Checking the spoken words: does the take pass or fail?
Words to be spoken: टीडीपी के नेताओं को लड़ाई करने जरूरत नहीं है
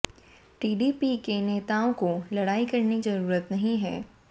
pass